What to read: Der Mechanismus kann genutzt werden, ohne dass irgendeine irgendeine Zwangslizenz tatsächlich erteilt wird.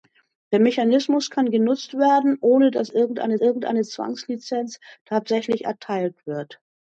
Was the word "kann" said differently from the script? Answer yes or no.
no